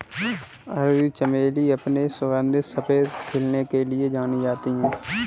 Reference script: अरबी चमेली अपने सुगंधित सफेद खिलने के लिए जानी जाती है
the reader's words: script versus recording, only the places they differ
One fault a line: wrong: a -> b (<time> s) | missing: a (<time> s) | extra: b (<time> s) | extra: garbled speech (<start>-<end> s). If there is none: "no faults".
no faults